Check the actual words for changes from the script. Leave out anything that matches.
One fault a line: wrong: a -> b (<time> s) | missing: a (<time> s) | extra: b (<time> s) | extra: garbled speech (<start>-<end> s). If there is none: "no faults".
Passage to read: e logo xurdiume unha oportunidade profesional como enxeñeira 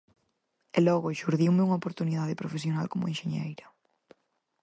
no faults